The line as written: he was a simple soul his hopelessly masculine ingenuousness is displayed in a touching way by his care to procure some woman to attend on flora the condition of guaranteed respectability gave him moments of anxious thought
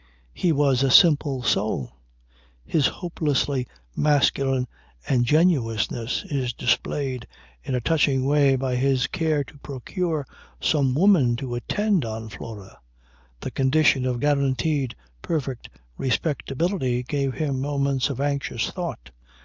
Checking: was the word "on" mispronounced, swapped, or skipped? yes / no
no